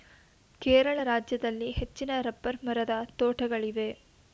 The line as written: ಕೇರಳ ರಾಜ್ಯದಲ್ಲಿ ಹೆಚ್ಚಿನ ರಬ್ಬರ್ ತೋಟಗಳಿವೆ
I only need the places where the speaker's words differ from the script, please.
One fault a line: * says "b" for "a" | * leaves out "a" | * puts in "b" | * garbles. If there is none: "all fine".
* puts in "ಮರದ"